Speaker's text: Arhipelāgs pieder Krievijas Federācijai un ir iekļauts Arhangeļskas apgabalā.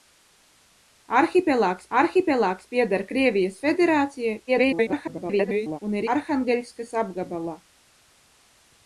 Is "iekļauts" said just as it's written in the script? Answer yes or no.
no